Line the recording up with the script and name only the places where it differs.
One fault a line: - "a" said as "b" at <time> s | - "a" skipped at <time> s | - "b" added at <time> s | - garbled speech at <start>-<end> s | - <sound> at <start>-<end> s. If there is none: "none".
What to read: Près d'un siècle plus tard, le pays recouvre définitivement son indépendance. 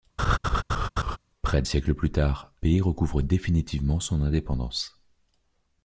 - laugh at 0.2-1.2 s
- "d'un" skipped at 1.6 s
- "le" skipped at 2.5 s